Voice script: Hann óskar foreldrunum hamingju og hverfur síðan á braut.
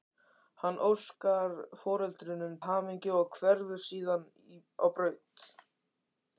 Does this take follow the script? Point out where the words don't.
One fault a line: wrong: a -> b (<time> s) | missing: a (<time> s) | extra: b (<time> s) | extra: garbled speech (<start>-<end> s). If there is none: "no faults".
no faults